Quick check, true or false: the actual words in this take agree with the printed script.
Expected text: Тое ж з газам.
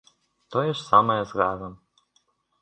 false